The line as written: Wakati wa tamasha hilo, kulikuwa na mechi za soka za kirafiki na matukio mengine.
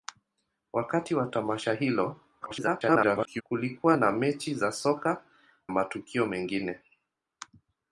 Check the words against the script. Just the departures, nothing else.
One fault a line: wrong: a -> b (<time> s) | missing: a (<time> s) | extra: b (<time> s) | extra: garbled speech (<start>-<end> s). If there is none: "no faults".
extra: garbled speech (2.4-3.4 s)
missing: za kirafiki na (5.2 s)